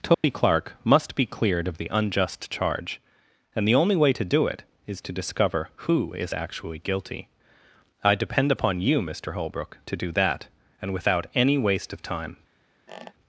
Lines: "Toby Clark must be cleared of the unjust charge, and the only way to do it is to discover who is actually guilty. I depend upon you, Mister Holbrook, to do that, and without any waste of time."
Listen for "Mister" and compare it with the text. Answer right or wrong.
right